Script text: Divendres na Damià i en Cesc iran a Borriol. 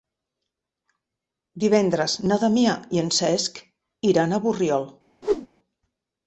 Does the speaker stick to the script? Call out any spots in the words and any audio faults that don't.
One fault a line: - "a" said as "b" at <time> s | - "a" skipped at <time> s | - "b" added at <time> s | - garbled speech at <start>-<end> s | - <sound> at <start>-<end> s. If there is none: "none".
- whoosh at 5.2-5.5 s